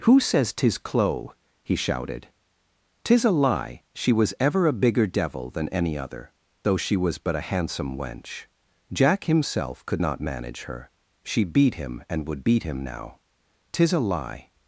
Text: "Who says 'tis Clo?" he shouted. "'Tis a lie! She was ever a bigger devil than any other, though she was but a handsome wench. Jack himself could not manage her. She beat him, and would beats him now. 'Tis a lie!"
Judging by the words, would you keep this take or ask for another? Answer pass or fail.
fail